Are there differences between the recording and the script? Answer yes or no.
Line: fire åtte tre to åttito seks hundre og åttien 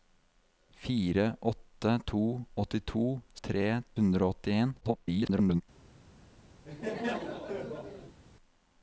yes